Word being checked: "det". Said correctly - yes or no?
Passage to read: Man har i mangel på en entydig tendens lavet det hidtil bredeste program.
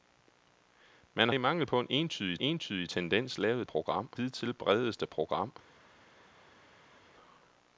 no